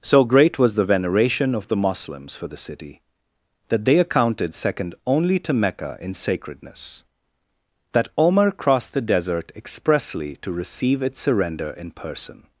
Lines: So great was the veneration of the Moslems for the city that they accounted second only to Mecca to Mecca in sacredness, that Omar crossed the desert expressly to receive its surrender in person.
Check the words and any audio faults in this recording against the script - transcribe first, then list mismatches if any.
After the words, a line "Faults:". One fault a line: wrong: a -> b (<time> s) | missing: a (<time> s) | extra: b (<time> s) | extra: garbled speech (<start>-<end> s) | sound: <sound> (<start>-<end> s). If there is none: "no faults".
So great was the veneration of the Moslems for the city that they accounted second only to Mecca in sacredness, that Omar crossed the desert expressly to receive its surrender in person.
Faults:
missing: to Mecca (6.0 s)